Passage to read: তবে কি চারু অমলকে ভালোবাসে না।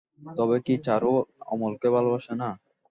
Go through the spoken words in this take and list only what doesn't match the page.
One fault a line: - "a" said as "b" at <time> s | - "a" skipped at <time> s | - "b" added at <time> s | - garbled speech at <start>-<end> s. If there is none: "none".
none